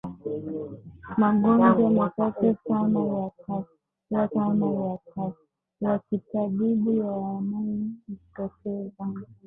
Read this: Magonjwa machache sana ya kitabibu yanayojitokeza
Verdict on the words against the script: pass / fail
fail